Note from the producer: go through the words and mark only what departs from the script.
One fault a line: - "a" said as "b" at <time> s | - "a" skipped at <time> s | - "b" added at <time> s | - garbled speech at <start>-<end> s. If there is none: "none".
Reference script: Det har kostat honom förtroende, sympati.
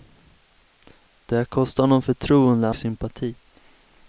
none